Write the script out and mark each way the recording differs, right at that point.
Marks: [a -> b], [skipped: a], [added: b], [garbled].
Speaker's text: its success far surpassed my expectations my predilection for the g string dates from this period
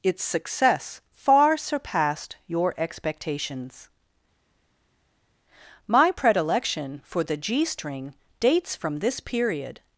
its success far surpassed [my -> your] expectations my predilection for the g string dates from this period